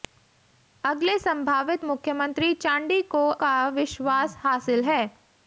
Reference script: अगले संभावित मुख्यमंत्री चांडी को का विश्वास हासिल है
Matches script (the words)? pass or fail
pass